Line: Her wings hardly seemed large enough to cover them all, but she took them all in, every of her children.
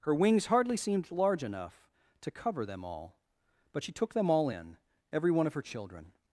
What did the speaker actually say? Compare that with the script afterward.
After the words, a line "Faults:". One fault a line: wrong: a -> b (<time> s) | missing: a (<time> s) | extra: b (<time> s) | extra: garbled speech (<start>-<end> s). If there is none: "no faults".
Her wings hardly seemed large enough to cover them all, but she took them all in, every one of her children.
Faults:
extra: one (5.3 s)